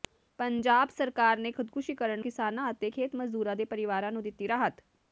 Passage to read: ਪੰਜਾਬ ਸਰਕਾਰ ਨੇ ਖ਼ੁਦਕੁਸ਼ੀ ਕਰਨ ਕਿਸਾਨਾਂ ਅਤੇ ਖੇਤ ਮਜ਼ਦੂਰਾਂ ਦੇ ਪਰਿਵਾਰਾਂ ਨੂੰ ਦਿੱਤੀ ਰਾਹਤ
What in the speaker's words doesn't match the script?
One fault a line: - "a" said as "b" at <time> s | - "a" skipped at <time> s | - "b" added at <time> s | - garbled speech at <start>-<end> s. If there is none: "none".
none